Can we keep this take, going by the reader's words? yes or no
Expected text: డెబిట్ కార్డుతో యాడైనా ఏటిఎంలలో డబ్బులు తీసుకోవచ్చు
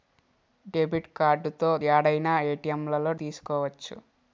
no